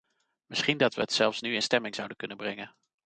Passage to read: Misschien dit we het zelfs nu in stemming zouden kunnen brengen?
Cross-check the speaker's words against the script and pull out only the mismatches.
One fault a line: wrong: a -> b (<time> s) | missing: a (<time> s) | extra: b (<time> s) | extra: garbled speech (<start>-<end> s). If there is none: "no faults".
wrong: dit -> dat (0.8 s)